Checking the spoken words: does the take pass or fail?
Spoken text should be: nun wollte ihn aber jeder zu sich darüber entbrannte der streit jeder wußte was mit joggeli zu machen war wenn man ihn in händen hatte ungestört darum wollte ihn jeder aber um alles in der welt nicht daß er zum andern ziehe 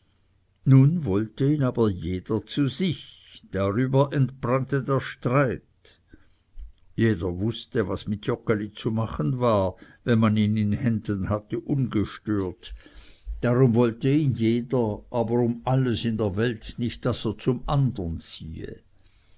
pass